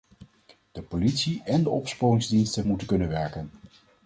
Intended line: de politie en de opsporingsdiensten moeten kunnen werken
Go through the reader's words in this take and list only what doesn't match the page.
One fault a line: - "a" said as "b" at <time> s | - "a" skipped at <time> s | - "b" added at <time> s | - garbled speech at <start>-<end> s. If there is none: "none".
none